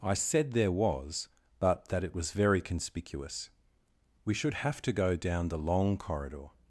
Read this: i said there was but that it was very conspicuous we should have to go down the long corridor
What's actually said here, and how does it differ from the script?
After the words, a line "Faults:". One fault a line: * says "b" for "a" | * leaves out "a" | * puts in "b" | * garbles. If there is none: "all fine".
i said there was but that it was very conspicuous we should have to go down the long corridor
Faults:
all fine